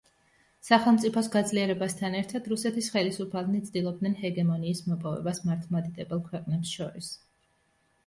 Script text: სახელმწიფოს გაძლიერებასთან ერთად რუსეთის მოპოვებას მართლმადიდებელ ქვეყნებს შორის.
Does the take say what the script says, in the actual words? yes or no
no